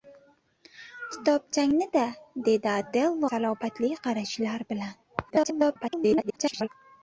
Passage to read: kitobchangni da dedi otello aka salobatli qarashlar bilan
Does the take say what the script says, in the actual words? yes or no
no